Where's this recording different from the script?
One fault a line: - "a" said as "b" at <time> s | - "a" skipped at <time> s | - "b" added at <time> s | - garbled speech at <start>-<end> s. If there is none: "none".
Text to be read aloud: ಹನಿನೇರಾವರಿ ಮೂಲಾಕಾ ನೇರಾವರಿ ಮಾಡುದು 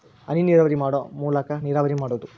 - "ಮಾಡು" added at 0.7 s